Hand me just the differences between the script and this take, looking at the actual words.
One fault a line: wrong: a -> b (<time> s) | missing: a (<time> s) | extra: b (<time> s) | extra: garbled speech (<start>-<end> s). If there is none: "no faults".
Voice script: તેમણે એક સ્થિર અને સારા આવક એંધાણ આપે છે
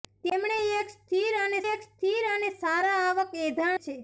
extra: એક સ્થિર અને (1.7 s)
missing: આપે (3.8 s)